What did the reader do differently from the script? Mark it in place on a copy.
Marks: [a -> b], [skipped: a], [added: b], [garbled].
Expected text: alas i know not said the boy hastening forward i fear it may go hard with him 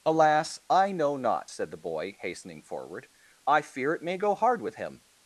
alas i know not said the boy hastening forward i fear it may go hard with him